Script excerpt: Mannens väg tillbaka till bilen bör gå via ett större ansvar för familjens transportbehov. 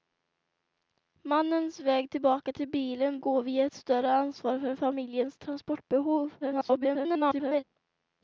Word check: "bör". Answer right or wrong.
wrong